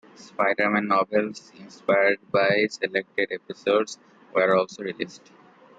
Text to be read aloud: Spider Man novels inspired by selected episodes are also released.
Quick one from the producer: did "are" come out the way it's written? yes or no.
no